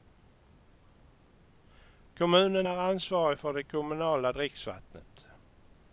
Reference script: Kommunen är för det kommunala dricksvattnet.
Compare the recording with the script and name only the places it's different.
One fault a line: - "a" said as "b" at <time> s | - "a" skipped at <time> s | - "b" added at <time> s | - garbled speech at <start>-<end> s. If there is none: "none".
- "ansvarig" added at 2.8 s